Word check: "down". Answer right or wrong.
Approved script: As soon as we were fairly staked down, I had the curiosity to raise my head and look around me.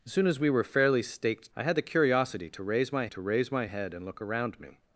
wrong